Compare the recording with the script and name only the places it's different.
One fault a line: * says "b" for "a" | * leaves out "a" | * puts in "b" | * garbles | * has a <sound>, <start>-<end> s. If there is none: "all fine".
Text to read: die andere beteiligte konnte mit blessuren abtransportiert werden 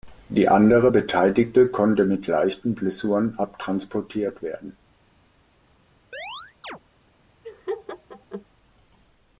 * puts in "leichten"
* has a chirp, 6.1-6.8 s
* has a laugh, 7.4-8.5 s